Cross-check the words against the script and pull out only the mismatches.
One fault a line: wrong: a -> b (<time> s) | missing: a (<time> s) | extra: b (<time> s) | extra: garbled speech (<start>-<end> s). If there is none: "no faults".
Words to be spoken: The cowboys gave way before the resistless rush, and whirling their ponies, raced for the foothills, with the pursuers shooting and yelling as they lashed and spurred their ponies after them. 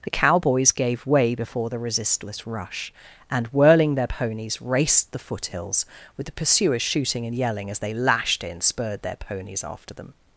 missing: for (5.1 s)
wrong: and -> in (8.4 s)